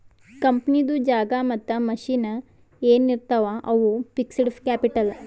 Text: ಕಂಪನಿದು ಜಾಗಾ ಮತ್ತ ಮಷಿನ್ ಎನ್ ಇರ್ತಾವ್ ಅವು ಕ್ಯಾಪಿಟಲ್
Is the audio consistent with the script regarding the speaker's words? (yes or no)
no